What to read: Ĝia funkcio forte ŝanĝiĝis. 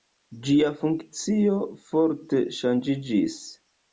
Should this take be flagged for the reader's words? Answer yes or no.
no